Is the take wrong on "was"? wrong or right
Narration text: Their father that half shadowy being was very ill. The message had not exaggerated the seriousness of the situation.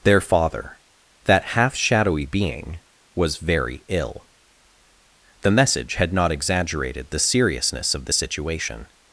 right